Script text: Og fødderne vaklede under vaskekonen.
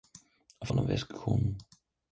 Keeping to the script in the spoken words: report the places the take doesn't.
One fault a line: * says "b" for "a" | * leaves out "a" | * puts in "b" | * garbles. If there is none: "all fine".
* leaves out "fødderne vaklede"